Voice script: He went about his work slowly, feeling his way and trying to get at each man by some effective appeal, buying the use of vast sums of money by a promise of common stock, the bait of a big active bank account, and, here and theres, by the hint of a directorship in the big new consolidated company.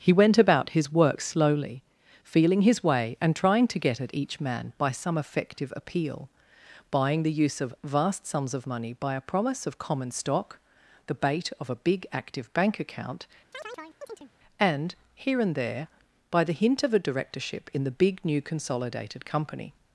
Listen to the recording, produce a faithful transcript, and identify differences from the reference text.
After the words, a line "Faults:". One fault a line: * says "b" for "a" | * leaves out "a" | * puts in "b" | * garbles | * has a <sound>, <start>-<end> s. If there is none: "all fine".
He went about his work slowly, feeling his way and trying to get at each man by some effective appeal, buying the use of vast sums of money by a promise of common stock, the bait of a big active bank account, and, here and there, by the hint of a directorship in the big new consolidated company.
Faults:
* has a chirp, 13.5-14.3 s
* says "there" for "theres"